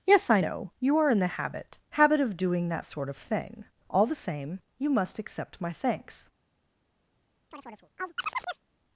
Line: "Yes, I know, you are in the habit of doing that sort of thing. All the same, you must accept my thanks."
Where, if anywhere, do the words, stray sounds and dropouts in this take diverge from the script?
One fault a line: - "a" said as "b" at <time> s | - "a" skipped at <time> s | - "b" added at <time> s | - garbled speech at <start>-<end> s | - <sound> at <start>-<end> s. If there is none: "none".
- "habit" added at 1.9 s
- chirp at 7.5-8.6 s